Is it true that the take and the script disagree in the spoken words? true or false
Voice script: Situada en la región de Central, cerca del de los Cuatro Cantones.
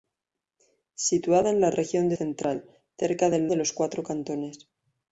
false